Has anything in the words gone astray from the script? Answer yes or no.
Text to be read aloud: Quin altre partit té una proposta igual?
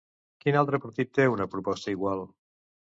no